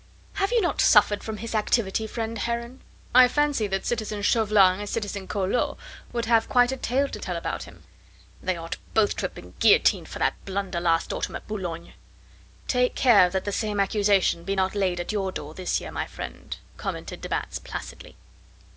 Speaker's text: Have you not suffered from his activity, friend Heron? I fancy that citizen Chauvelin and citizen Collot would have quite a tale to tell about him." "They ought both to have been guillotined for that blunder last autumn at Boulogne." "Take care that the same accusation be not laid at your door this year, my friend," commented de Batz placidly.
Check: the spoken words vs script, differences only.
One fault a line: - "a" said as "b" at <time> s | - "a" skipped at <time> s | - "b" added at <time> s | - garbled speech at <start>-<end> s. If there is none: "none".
none